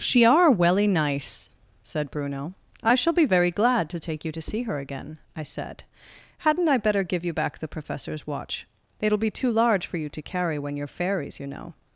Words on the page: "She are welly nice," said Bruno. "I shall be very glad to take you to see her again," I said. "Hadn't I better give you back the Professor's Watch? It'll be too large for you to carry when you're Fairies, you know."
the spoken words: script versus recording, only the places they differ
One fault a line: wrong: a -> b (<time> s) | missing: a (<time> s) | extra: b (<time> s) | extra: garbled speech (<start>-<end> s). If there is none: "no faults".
no faults